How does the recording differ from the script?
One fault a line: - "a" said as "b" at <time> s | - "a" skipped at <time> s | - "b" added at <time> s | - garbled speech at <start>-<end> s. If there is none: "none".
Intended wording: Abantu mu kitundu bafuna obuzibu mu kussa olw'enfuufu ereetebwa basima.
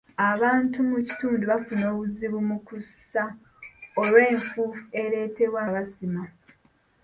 none